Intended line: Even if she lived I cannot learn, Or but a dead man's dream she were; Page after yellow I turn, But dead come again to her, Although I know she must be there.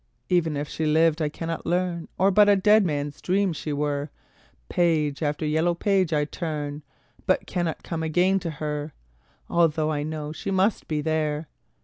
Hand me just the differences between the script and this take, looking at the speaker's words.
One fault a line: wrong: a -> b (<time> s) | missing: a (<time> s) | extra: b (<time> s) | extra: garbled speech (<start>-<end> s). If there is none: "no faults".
extra: page (5.7 s)
wrong: dead -> cannot (7.5 s)